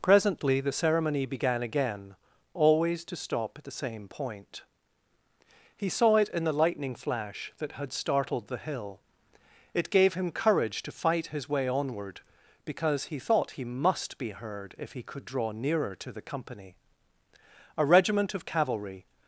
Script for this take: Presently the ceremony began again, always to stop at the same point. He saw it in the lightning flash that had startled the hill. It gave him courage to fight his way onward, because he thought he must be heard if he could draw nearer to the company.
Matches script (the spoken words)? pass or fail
fail